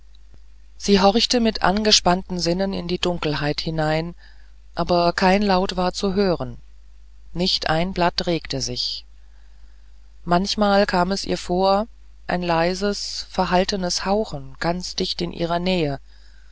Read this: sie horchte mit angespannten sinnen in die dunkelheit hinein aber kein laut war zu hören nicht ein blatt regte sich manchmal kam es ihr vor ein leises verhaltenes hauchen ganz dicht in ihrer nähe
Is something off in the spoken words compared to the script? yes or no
no